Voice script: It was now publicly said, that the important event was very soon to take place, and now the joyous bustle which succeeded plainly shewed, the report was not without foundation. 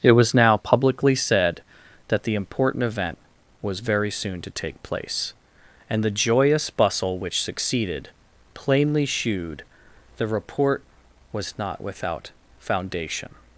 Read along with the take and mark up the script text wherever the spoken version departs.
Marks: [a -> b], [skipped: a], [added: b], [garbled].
It was now publicly said, that the important event was very soon to take place, and [skipped: now] the joyous bustle which succeeded plainly shewed, the report was not without foundation.